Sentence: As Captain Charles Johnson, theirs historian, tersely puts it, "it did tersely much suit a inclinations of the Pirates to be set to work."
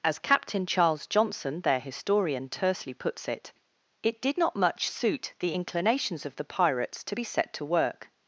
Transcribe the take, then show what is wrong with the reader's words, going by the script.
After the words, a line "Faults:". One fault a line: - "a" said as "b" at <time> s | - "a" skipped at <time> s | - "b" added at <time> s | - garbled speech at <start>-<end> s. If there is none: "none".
As Captain Charles Johnson, their historian, tersely puts it, "it did not much suit the inclinations of the Pirates to be set to work."
Faults:
- "theirs" said as "their" at 1.6 s
- "tersely" said as "not" at 4.4 s
- "a" said as "the" at 5.4 s